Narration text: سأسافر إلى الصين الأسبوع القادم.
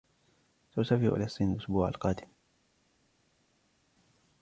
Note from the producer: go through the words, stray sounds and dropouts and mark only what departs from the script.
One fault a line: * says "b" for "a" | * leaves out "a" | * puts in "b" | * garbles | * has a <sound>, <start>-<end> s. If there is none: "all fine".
all fine